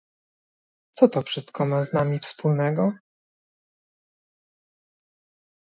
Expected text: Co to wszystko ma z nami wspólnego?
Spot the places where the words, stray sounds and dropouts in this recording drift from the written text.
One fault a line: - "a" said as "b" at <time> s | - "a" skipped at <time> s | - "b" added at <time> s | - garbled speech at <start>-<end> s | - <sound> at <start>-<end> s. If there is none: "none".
none